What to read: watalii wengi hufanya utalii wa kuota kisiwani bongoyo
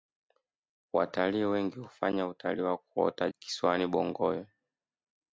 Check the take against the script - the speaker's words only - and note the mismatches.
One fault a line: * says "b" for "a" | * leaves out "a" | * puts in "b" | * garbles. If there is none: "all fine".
all fine